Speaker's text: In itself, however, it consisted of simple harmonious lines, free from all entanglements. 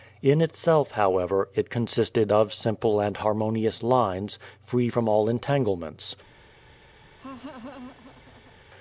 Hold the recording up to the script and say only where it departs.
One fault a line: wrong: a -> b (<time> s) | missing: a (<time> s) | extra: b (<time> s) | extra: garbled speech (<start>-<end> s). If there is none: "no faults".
extra: and (3.0 s)